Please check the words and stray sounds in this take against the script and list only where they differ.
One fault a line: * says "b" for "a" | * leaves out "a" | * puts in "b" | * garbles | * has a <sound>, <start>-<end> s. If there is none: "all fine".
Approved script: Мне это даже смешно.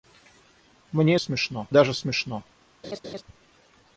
* says "смешно" for "это"
* has a laugh, 2.8-3.2 s